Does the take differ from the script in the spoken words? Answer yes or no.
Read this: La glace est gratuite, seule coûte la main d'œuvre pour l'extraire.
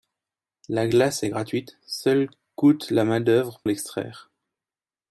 yes